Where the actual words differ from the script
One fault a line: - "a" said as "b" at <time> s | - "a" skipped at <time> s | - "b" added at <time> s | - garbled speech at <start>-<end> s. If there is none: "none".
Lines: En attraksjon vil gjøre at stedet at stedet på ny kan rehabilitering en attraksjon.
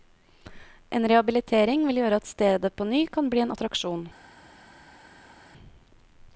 - "attraksjon" said as "rehabilitering" at 1.1 s
- "at stedet" skipped at 2.7 s
- "rehabilitering" said as "bli" at 3.4 s